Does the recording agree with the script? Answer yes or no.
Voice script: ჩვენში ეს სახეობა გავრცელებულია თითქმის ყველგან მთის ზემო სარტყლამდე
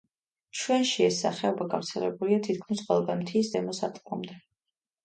yes